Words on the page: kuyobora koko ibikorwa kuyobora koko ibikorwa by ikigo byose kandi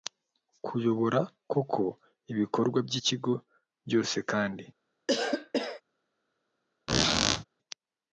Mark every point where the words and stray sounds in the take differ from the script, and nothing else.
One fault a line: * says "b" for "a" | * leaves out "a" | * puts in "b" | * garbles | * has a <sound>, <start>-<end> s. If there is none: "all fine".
* leaves out "kuyobora koko ibikorwa"
* has a cough, 5.1-5.8 s
* has a squeak, 6.9-7.4 s